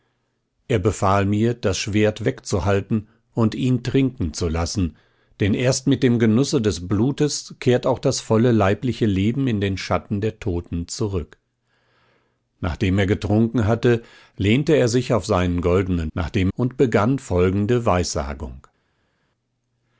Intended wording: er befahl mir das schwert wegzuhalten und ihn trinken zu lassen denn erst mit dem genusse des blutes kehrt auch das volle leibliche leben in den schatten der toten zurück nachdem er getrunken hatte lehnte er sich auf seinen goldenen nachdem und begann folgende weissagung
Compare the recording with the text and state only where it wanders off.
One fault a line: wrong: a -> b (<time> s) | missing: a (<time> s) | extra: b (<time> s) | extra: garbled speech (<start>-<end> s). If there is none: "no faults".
no faults